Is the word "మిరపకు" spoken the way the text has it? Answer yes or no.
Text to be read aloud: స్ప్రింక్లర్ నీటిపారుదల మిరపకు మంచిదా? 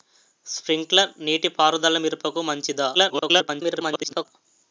yes